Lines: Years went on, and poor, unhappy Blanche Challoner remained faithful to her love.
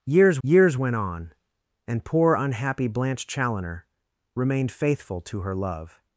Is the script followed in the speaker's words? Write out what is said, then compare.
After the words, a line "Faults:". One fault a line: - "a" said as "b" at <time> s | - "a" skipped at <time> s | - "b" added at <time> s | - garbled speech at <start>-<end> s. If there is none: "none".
Years years went on, and poor, unhappy Blanche Challoner remained faithful to her love.
Faults:
- "years" added at 0.4 s